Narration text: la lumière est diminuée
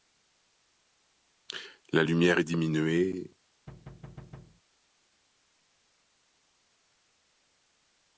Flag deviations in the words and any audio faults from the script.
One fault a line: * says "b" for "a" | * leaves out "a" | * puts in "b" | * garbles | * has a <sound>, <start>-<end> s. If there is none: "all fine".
* has a thud, 3.7-4.6 s